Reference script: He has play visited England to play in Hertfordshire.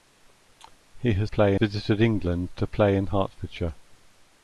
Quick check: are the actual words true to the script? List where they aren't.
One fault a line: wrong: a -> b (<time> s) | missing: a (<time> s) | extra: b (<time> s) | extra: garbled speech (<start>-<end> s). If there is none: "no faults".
no faults